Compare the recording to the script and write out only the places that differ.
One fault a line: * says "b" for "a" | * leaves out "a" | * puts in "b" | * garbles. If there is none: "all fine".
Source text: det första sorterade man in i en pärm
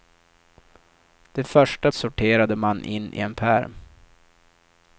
all fine